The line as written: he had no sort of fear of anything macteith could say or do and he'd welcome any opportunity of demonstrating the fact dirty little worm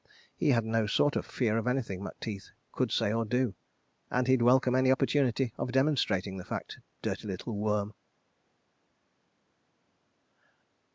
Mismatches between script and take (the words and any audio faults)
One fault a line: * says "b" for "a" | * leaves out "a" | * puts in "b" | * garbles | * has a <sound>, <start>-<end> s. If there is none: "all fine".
all fine